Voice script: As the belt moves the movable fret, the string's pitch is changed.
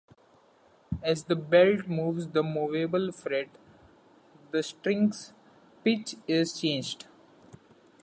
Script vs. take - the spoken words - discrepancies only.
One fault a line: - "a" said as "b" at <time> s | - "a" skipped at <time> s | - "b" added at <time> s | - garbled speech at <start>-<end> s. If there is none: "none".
none